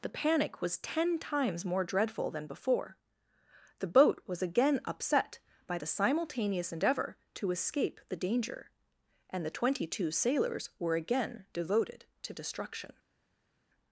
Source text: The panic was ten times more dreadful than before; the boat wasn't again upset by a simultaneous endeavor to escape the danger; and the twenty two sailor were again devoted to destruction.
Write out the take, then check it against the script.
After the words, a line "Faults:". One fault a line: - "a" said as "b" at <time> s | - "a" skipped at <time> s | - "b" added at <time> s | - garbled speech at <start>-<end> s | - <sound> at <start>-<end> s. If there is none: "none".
The panic was ten times more dreadful than before; the boat was again upset by the simultaneous endeavor to escape the danger; and the twenty two sailors were again devoted to destruction.
Faults:
- "wasn't" said as "was" at 4.2 s
- "a" said as "the" at 5.7 s
- "sailor" said as "sailors" at 10.1 s